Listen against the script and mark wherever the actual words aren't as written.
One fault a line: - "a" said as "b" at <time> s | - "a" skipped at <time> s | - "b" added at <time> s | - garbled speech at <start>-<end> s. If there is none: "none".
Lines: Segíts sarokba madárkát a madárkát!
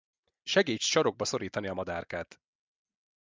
- "madárkát" said as "szorítani" at 1.2 s